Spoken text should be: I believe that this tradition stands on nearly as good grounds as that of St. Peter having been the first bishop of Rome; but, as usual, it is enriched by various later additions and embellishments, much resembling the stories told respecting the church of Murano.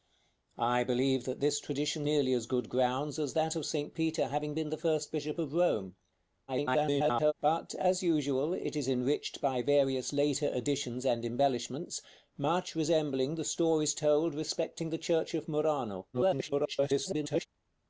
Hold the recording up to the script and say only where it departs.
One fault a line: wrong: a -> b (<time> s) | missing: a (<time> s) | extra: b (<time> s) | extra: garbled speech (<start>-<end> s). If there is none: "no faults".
missing: stands on (2.1 s)
extra: garbled speech (6.5-7.3 s)
extra: garbled speech (16.1-17.5 s)